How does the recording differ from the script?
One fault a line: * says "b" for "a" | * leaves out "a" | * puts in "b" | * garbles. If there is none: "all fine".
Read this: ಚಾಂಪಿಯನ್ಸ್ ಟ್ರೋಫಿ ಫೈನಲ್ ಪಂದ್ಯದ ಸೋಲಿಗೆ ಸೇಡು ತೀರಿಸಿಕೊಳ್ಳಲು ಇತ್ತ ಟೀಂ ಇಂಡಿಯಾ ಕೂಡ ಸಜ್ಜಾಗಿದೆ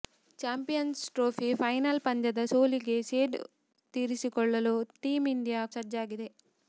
* leaves out "ಇತ್ತ"
* leaves out "ಕೂಡ"